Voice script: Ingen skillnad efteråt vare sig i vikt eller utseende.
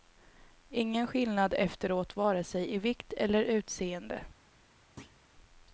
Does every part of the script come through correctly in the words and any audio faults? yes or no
no